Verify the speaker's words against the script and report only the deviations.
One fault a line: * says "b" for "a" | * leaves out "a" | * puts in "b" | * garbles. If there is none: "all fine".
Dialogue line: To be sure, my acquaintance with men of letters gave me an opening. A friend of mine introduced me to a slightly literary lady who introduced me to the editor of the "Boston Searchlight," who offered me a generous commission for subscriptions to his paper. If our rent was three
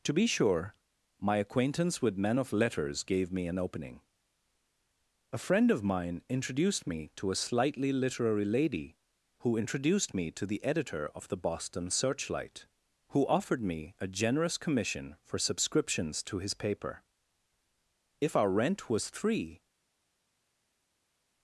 all fine